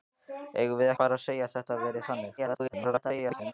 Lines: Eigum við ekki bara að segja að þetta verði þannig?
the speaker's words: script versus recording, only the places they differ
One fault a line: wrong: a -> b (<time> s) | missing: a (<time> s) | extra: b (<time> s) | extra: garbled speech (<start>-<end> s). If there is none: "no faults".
missing: ekki (0.9 s)
extra: garbled speech (2.4-3.5 s)